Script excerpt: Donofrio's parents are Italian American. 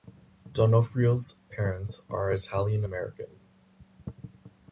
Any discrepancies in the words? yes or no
no